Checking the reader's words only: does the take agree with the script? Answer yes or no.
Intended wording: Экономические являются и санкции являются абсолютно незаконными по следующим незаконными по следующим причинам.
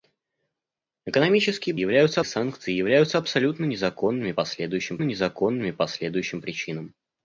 yes